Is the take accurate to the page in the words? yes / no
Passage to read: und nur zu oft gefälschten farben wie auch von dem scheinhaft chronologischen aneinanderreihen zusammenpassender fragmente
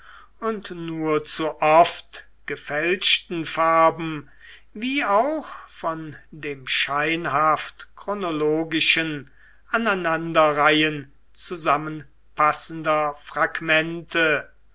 yes